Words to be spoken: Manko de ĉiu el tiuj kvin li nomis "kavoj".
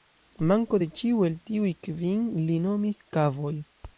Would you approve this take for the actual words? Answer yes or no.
yes